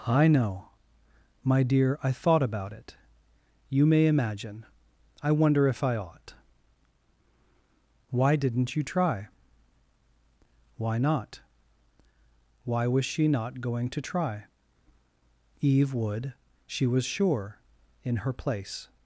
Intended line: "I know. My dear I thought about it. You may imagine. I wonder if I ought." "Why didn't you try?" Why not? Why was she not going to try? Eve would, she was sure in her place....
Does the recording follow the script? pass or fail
pass